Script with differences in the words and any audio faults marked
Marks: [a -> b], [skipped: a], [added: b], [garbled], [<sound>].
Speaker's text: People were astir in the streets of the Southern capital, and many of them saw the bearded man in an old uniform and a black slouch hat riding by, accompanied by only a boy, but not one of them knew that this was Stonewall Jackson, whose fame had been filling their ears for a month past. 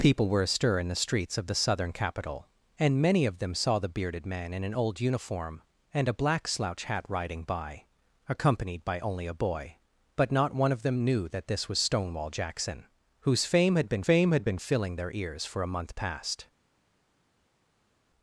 People were astir in the streets of the Southern capital, and many of them saw the bearded man in an old uniform and a black slouch hat riding by, accompanied by only a boy, but not one of them knew that this was Stonewall Jackson, whose fame had been [added: fame had been] filling their ears for a month past.